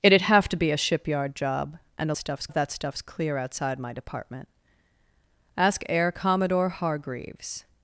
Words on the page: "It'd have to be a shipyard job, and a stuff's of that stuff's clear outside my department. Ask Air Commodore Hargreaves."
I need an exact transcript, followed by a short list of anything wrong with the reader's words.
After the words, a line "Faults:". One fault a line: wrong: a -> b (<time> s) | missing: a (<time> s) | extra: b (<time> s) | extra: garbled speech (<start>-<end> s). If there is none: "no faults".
"It'd have to be a shipyard job, and a stuff's of that stuff's clear outside my department. Ask Air Commodore Hargreaves."
Faults:
no faults